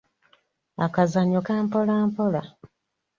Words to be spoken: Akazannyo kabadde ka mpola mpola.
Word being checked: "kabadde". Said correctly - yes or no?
no